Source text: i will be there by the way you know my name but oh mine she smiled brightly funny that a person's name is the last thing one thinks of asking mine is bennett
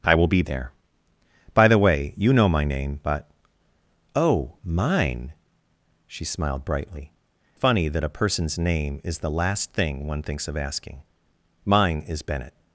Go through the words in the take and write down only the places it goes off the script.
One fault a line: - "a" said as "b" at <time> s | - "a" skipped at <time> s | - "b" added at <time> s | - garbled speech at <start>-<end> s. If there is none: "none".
none